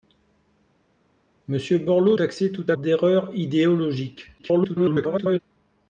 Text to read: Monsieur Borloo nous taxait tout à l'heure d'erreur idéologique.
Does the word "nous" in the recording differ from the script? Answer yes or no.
yes